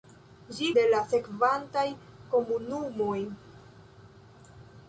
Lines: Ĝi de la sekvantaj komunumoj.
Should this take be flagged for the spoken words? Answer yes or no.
no